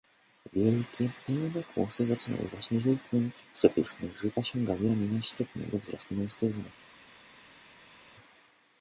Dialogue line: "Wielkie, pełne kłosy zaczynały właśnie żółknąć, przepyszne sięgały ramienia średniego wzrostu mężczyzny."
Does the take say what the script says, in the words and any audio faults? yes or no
no